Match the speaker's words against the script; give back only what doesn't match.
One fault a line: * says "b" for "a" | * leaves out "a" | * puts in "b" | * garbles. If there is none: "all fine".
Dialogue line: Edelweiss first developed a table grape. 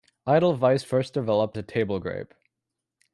all fine